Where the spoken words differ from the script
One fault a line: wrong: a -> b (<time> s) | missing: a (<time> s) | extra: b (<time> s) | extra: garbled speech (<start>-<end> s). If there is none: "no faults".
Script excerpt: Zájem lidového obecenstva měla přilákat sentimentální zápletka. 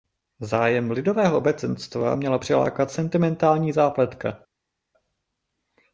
no faults